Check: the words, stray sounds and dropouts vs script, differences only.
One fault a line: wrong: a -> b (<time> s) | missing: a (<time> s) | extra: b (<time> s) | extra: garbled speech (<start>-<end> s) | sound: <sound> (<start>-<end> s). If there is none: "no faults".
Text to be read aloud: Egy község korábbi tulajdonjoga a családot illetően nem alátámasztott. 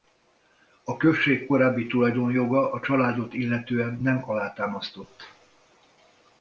wrong: Egy -> A (0.8 s)